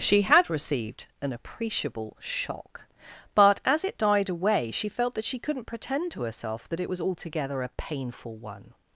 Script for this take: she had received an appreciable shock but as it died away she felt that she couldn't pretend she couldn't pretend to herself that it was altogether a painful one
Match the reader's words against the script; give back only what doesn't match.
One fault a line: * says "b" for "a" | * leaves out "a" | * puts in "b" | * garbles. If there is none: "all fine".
* leaves out "she couldn't pretend"